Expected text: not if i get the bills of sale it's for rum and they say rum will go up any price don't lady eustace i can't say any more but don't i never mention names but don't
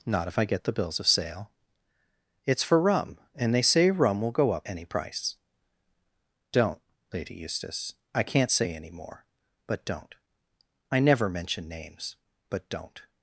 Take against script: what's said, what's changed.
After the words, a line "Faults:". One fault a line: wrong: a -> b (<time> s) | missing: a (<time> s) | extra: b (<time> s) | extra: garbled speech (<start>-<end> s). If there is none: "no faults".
not if i get the bills of sale it's for rum and they say rum will go up any price don't lady eustace i can't say any more but don't i never mention names but don't
Faults:
no faults